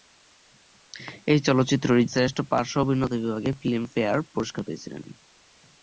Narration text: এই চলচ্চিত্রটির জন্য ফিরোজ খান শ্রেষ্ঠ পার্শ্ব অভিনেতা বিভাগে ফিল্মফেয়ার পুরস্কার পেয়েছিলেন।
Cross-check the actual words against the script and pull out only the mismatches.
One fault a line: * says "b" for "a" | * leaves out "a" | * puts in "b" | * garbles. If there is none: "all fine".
* leaves out "জন্য ফিরোজ খান"